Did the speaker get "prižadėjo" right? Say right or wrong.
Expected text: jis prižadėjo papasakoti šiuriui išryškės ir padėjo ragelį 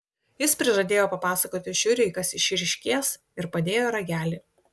right